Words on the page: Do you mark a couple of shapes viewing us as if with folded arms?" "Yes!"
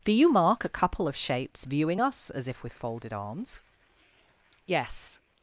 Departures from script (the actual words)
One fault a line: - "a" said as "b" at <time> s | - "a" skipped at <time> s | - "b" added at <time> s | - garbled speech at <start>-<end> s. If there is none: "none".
none